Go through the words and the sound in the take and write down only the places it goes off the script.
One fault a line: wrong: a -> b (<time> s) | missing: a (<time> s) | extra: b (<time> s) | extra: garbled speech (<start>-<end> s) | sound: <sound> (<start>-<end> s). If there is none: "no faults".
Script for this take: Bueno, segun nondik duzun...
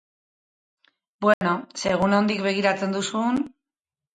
sound: dropout (1.3-1.4 s)
extra: begiratzen (2.5 s)